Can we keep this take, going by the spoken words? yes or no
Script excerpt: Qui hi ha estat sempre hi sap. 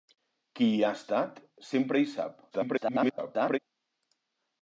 no